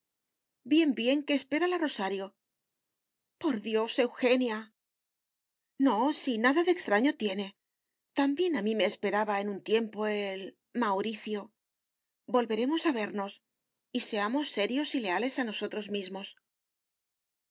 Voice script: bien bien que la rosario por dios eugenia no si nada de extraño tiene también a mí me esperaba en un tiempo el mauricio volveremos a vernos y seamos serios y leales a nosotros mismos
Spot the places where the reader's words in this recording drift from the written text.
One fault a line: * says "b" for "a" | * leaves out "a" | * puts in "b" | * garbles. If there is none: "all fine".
* puts in "espera"